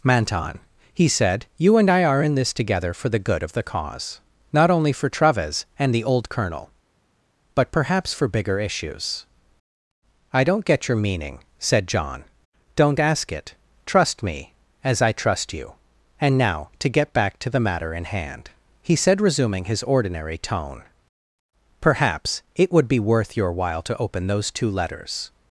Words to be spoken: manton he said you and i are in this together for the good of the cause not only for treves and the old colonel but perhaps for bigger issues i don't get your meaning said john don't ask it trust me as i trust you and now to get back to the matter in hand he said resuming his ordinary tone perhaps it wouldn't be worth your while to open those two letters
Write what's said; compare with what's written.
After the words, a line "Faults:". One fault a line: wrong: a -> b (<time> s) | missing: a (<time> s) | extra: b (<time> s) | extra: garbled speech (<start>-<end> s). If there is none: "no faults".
manton he said you and i are in this together for the good of the cause not only for treves and the old colonel but perhaps for bigger issues i don't get your meaning said john don't ask it trust me as i trust you and now to get back to the matter in hand he said resuming his ordinary tone perhaps it would be worth your while to open those two letters
Faults:
wrong: wouldn't -> would (22.7 s)